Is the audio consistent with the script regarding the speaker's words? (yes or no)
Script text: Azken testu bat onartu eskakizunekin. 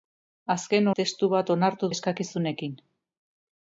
yes